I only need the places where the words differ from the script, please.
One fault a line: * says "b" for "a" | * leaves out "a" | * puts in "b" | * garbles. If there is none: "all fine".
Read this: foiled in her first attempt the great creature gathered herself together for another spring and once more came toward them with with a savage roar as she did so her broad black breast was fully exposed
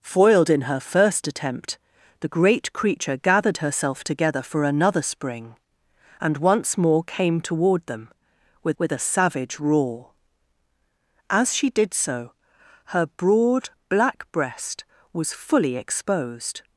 all fine